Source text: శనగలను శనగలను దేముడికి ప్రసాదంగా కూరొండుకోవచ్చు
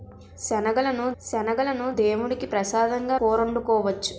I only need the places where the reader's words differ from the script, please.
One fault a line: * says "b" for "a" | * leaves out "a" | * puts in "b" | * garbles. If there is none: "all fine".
all fine